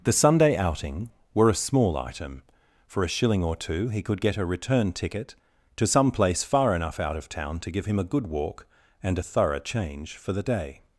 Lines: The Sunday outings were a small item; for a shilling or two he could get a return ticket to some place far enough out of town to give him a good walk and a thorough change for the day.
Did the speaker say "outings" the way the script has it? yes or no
no